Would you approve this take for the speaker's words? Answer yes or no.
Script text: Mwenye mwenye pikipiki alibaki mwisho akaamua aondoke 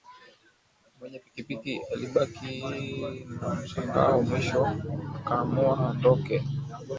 no